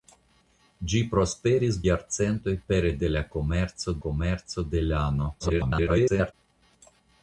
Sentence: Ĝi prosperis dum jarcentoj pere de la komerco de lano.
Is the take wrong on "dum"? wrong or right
wrong